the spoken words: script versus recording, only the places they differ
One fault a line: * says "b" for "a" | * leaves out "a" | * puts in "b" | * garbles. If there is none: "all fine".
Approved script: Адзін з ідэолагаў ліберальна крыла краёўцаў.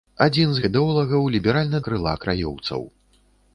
all fine